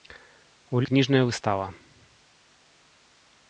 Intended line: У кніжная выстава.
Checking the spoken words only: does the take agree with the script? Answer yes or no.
yes